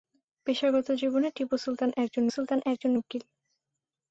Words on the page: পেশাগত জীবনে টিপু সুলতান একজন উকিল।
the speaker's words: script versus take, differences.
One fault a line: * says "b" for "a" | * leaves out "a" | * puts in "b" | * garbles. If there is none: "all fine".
* puts in "সুলতান একজন"